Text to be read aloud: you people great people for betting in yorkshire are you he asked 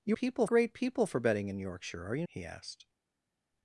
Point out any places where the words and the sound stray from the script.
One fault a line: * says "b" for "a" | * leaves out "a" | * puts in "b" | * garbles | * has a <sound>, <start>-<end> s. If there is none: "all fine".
all fine